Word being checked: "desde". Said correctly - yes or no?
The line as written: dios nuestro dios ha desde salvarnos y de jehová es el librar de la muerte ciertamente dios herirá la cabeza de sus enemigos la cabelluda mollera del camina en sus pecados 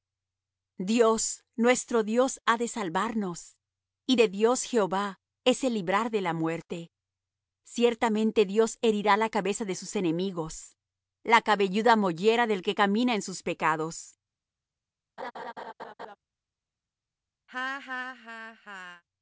no